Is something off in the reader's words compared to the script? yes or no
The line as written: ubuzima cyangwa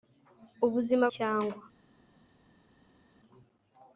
no